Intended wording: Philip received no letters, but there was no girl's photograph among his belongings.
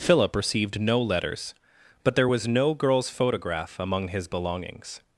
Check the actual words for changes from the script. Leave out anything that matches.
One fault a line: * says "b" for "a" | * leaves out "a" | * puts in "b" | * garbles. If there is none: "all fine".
all fine